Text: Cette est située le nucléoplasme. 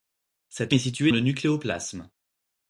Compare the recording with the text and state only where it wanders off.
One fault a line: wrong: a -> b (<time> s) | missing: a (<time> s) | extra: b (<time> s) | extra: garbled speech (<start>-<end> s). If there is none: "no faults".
no faults